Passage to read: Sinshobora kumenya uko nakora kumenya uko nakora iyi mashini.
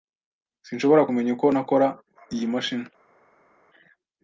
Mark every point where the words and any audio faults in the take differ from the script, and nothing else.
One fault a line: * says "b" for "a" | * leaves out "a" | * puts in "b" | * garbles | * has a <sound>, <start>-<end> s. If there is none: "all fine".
* leaves out "kumenya uko nakora"